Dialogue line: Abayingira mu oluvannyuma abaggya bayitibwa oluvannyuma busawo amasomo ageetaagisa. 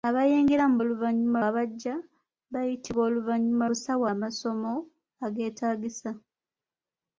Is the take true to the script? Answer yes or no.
yes